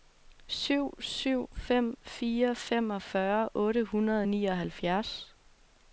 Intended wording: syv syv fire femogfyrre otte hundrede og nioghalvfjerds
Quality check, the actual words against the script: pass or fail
fail